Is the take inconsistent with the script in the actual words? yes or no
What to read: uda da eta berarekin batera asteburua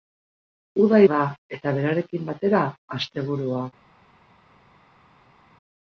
no